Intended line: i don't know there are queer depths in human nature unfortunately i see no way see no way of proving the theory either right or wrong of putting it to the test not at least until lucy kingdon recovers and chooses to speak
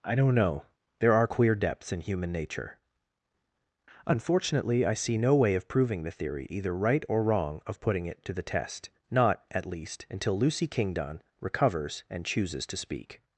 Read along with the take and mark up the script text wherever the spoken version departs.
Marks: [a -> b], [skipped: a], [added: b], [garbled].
i don't know there are queer depths in human nature unfortunately i see no way [skipped: see no way] of proving the theory either right or wrong of putting it to the test not at least until lucy kingdon recovers and chooses to speak